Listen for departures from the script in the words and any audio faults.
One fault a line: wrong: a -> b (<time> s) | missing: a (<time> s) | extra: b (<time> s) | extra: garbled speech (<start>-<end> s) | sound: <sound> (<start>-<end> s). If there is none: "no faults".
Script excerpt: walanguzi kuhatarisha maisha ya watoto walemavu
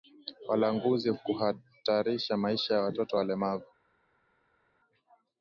no faults